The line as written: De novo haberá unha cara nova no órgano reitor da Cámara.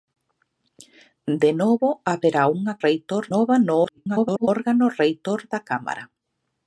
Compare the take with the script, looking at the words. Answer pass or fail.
fail